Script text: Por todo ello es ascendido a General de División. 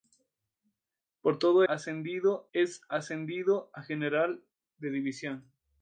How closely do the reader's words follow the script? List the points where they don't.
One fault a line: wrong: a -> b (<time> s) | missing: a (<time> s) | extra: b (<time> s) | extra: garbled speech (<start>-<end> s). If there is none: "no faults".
wrong: ello -> ascendido (1.6 s)